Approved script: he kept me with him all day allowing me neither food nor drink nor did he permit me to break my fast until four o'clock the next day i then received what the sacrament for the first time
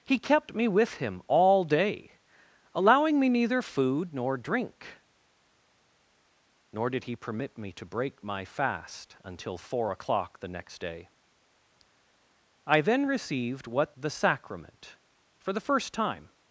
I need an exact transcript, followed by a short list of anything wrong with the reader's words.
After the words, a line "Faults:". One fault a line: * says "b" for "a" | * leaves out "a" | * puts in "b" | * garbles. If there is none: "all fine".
he kept me with him all day allowing me neither food nor drink nor did he permit me to break my fast until four o'clock the next day i then received what the sacrament for the first time
Faults:
all fine